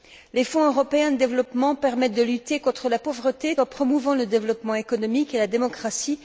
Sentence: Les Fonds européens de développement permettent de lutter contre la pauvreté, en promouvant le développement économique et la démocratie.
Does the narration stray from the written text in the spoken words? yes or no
no